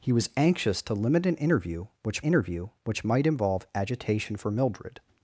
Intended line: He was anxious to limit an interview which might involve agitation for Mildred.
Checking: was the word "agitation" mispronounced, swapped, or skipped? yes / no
no